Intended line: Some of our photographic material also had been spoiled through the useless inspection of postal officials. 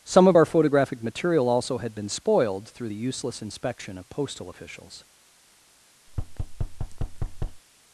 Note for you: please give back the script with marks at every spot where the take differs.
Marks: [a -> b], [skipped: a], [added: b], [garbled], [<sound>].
Some of our photographic material also had been spoiled through the useless inspection of postal officials. [thud]